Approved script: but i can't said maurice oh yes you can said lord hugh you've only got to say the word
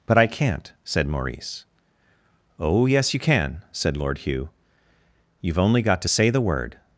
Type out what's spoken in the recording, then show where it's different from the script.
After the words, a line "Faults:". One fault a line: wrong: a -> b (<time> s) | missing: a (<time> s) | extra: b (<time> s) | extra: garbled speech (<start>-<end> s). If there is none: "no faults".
but i can't said maurice oh yes you can said lord hugh you've only got to say the word
Faults:
no faults